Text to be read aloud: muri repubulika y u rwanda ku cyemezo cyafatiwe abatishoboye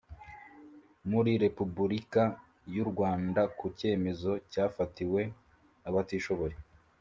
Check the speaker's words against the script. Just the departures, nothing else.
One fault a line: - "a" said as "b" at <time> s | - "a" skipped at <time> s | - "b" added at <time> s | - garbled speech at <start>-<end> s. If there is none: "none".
none